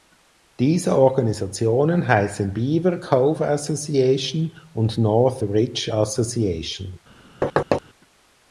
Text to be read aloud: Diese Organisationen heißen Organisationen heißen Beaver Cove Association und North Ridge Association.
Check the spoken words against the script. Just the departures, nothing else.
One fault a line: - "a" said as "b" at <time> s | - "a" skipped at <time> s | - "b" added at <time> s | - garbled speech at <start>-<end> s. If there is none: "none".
- "Organisationen heißen" skipped at 2.5 s